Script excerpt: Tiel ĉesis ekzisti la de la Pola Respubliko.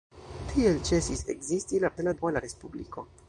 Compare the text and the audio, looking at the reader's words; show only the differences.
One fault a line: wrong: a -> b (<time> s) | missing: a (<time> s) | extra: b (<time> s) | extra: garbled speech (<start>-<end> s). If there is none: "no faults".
no faults